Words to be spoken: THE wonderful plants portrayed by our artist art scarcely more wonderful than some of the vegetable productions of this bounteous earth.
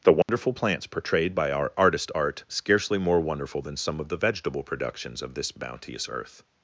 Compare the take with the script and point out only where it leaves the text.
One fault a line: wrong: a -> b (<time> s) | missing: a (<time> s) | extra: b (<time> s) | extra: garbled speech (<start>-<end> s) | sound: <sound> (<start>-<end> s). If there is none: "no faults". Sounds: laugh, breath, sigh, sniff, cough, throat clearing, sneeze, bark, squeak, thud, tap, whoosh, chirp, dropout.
sound: dropout (0.2-0.3 s)